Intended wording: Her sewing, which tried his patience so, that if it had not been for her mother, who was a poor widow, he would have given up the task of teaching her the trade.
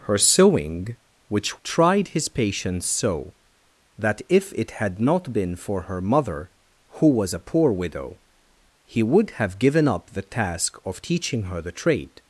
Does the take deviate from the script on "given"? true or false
false